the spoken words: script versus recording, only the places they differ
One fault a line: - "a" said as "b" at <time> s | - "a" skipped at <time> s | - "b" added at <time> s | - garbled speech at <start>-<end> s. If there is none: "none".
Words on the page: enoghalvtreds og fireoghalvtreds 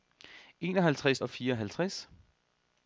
none